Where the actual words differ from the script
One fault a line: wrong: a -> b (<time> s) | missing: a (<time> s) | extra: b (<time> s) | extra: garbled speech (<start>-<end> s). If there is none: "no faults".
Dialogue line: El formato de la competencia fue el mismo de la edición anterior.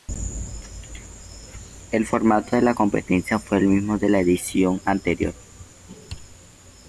no faults